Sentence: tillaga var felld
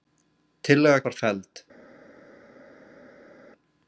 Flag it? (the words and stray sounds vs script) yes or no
no